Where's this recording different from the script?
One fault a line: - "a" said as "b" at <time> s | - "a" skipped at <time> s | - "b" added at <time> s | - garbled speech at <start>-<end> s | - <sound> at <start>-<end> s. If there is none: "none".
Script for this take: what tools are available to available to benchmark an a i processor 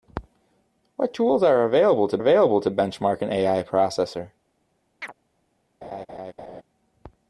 - chirp at 5.0-5.1 s
- laugh at 5.8-6.6 s